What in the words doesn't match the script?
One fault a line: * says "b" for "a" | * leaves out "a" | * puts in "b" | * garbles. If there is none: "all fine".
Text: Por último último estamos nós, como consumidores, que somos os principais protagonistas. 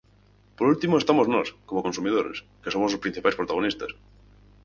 * leaves out "último"